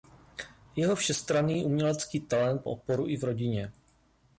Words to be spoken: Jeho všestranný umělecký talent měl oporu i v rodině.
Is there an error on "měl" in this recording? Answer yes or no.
yes